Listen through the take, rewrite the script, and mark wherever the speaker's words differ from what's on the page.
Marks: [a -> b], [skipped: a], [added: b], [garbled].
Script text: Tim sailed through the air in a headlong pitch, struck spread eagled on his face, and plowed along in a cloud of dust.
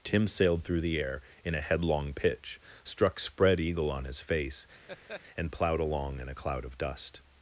Tim sailed through the air in a headlong pitch, struck spread [eagled -> eagle] on his face, and plowed along in a cloud of dust.